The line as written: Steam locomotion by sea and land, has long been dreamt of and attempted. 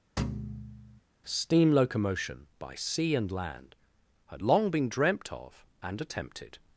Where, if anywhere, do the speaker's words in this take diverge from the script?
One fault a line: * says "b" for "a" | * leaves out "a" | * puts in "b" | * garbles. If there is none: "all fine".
* says "had" for "has"